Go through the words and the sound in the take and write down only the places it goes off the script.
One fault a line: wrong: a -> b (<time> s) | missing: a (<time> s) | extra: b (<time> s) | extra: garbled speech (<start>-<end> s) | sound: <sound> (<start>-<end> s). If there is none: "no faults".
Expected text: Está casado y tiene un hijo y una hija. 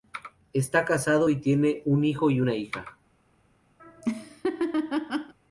sound: laugh (3.8-5.3 s)